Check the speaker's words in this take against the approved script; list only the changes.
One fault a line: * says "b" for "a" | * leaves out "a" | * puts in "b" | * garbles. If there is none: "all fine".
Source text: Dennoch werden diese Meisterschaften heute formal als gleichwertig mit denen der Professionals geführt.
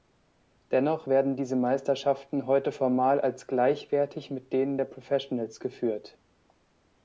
all fine